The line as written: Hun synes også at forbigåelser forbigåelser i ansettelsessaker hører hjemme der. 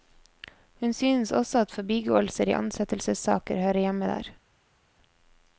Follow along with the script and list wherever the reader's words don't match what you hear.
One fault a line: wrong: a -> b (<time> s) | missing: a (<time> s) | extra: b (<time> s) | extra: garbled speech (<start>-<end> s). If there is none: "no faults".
missing: forbigåelser (2.5 s)